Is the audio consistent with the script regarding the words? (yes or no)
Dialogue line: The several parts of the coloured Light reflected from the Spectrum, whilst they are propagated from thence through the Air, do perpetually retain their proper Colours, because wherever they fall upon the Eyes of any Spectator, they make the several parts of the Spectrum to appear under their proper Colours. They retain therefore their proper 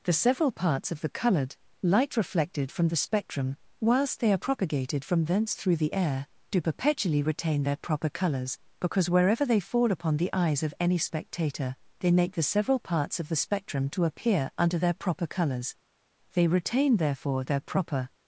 yes